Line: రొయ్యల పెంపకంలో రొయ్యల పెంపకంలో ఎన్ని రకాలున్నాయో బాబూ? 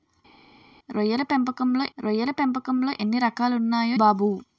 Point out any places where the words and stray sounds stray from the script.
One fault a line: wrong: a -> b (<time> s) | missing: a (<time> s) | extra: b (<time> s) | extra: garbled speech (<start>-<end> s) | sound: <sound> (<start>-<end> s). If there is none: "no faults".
no faults